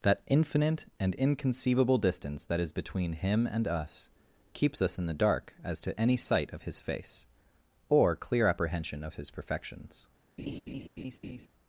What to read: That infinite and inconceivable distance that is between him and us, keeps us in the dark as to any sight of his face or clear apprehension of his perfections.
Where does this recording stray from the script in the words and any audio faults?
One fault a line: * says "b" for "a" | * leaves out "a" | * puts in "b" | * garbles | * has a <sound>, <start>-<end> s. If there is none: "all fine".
* has a laugh, 10.4-11.5 s